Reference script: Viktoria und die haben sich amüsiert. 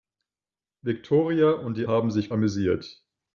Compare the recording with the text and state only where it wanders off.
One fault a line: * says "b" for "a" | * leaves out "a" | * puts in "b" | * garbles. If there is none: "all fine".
all fine